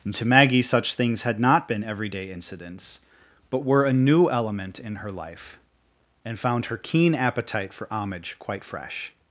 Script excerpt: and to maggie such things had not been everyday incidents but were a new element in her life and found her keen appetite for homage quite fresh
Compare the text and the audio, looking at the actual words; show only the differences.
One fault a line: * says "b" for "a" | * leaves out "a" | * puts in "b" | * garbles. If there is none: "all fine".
all fine